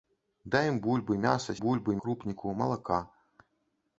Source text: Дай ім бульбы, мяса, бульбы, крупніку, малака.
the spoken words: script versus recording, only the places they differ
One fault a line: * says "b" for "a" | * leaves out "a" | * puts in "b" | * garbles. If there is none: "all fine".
all fine